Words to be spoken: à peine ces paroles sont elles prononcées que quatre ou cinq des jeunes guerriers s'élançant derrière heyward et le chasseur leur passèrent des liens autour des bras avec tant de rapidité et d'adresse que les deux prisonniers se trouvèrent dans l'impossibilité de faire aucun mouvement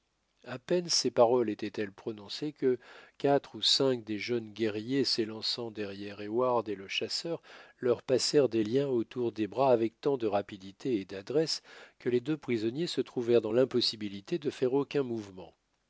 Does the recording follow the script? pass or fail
fail